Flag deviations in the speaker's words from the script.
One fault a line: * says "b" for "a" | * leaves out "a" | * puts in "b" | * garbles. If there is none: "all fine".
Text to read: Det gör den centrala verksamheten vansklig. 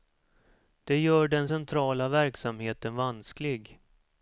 all fine